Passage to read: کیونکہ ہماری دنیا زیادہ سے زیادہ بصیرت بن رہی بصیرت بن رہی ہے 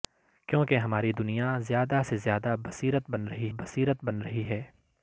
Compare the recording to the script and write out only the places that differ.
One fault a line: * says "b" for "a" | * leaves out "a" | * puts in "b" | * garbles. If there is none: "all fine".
all fine